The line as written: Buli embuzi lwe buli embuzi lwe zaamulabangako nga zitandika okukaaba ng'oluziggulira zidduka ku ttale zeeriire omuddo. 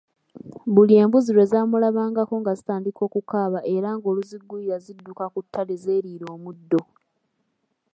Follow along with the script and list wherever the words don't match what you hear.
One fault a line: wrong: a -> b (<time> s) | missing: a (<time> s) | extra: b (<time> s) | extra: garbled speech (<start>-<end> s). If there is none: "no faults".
missing: buli embuzi lwe (1.4 s)
extra: era (3.8 s)